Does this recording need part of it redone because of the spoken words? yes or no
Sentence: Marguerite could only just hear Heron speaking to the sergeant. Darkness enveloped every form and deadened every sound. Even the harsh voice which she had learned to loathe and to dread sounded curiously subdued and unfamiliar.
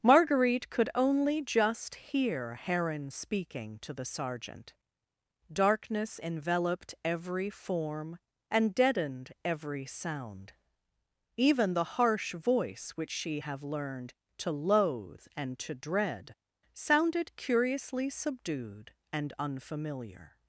yes